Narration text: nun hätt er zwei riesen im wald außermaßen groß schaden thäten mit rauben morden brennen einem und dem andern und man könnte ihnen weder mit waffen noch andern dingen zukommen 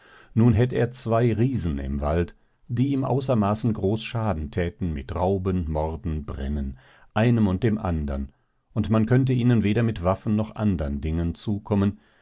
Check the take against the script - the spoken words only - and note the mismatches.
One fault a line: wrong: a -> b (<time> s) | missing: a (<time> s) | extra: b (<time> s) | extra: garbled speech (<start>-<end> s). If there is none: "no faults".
extra: die ihm (2.7 s)